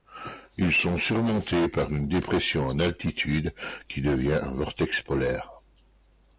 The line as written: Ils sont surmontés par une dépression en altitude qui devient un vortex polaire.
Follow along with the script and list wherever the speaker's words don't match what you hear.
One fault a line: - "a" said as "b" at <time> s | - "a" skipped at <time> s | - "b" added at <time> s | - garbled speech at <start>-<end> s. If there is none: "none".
none